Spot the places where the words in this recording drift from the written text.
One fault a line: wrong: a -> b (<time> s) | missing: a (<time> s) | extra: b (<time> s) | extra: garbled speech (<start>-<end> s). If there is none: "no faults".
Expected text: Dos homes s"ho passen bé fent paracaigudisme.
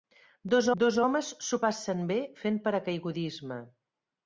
extra: dos (0.8 s)